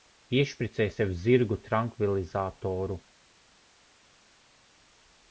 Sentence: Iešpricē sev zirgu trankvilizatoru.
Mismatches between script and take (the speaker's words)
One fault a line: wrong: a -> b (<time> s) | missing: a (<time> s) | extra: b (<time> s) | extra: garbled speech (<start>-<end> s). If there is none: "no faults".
no faults